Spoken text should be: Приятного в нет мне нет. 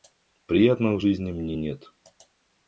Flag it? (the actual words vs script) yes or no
yes